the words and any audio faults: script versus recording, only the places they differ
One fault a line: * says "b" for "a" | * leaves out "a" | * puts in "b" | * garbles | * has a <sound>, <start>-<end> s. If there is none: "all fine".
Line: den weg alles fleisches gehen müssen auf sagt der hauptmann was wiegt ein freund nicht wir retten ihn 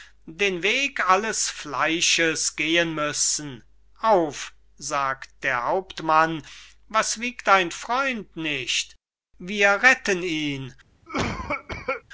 * has a cough, 11.1-12.0 s